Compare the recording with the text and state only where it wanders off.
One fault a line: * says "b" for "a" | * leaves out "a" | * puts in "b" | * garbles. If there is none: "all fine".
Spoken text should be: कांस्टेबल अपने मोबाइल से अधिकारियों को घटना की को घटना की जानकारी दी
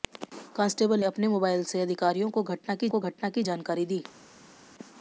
all fine